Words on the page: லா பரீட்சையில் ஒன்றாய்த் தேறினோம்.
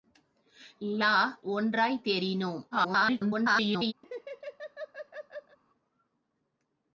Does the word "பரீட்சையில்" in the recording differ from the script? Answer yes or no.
yes